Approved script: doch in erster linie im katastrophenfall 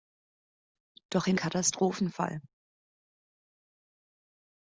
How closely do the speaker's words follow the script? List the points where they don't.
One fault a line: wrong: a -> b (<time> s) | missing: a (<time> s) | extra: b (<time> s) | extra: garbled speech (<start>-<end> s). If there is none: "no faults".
missing: erster linie im (1.4 s)